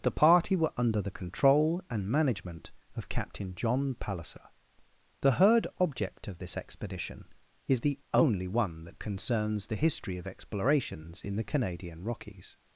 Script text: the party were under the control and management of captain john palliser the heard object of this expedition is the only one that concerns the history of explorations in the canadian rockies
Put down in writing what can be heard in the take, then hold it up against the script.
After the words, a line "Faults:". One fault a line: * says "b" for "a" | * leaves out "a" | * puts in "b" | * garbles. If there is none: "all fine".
the party were under the control and management of captain john palliser the heard object of this expedition is the only one that concerns the history of explorations in the canadian rockies
Faults:
all fine